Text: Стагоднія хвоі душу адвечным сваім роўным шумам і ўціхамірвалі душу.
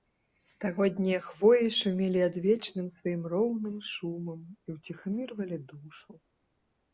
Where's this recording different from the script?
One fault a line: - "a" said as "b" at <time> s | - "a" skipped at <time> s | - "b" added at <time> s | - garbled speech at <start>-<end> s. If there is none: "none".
- "душу" said as "шумелі" at 1.8 s